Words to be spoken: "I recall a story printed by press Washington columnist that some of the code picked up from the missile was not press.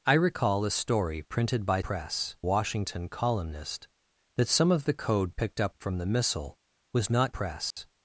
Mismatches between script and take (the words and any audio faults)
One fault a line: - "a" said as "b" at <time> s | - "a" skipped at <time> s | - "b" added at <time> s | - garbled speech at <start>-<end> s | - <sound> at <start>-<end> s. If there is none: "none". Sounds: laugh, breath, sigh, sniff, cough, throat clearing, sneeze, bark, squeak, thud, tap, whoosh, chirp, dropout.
- dropout at 7.7-7.8 s